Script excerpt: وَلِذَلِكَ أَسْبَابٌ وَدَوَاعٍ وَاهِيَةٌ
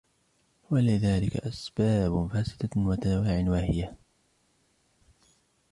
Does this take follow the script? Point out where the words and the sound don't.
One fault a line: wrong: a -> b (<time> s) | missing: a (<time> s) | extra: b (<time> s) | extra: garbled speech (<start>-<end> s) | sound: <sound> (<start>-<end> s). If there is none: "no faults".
extra: فَاسِدَةٌ (2.3 s)